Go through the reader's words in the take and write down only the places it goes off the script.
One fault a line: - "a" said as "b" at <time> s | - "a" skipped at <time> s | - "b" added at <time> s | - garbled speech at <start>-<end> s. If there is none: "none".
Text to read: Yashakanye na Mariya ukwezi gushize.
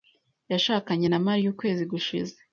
none